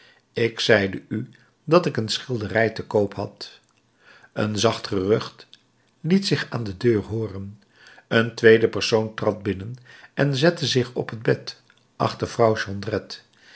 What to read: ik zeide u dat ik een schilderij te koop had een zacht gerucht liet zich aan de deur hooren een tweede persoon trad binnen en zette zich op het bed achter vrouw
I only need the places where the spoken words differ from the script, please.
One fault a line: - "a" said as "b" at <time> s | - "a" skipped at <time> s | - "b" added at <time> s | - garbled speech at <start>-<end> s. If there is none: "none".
none